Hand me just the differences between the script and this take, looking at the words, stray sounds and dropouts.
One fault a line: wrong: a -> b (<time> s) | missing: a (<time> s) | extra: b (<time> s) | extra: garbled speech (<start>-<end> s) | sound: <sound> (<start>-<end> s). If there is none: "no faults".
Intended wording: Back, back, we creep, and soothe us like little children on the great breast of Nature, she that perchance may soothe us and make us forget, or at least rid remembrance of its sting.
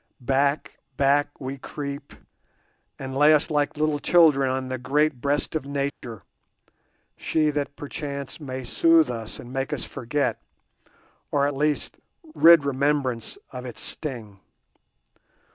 wrong: soothe -> lay (3.1 s)
sound: dropout (5.9-6.0 s)